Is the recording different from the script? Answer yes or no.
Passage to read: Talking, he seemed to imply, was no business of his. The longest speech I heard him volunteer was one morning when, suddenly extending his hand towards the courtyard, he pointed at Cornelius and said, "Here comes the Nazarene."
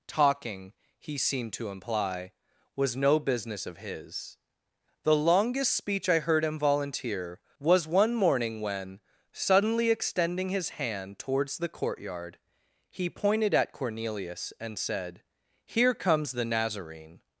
no